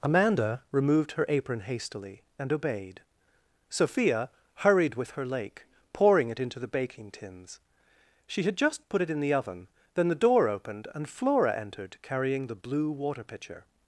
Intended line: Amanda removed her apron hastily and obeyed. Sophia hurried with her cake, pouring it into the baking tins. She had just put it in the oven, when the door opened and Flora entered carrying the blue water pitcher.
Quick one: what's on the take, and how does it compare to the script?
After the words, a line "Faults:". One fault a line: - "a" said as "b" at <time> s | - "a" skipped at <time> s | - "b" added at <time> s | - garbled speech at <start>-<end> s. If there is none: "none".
Amanda removed her apron hastily and obeyed. Sophia hurried with her lake, pouring it into the baking tins. She had just put it in the oven, then the door opened and Flora entered carrying the blue water pitcher.
Faults:
- "cake" said as "lake" at 5.2 s
- "when" said as "then" at 9.9 s